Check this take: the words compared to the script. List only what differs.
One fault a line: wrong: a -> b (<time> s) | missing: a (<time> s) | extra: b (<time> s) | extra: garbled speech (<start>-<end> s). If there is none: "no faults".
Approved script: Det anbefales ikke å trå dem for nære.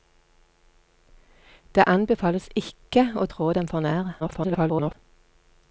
extra: garbled speech (4.2-4.9 s)